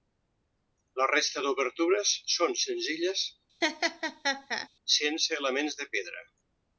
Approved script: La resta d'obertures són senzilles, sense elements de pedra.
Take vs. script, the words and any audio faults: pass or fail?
fail